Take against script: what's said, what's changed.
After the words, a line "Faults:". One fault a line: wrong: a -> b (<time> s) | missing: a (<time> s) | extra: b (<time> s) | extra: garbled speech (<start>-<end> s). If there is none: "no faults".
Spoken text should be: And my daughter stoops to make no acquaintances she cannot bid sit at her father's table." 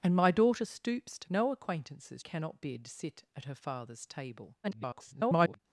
And my daughter stoops to no acquaintances cannot bid sit at her father's table." [garbled]
Faults:
missing: make (1.3 s)
missing: she (2.2 s)
extra: garbled speech (4.6-5.6 s)